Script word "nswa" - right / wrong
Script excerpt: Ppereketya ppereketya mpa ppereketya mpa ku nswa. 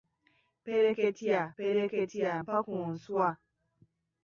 right